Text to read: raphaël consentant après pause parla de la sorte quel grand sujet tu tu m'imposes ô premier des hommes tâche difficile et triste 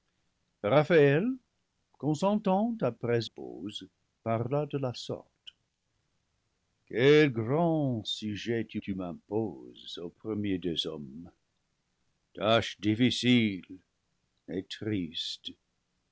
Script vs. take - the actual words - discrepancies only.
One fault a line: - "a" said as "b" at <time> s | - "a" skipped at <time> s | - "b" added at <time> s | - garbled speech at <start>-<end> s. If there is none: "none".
none